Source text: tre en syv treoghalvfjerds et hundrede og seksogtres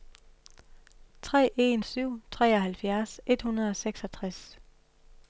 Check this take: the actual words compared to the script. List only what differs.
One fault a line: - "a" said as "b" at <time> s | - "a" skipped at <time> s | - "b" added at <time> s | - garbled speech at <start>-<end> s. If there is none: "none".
none